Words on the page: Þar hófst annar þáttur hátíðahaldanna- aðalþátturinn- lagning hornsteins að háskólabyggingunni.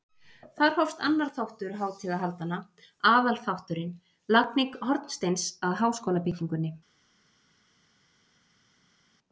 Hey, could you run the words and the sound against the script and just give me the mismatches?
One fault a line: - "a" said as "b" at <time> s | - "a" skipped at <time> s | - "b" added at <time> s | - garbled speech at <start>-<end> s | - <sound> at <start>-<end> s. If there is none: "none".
none